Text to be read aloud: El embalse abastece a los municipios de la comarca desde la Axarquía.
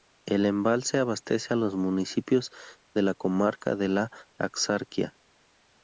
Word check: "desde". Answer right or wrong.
wrong